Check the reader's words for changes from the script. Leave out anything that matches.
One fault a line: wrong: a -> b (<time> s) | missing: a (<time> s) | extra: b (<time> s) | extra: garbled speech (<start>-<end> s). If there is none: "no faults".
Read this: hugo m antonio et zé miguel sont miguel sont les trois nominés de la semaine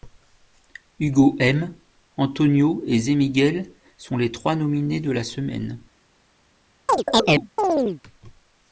missing: miguel sont (4.2 s)